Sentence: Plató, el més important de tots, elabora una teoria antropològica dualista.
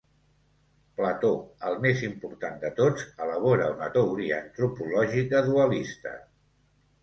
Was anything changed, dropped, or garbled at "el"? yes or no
no